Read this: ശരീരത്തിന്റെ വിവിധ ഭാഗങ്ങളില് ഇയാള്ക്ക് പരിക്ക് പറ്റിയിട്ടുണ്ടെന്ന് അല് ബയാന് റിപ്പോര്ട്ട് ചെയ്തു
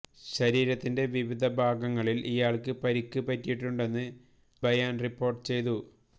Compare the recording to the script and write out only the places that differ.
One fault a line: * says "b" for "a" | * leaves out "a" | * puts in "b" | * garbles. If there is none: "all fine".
* leaves out "അല്"